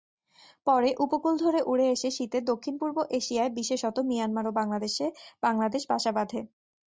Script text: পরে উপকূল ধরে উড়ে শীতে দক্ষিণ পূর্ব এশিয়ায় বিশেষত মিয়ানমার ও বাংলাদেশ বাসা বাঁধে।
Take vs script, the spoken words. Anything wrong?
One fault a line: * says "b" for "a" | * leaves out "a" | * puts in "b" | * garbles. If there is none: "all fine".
* puts in "এসে"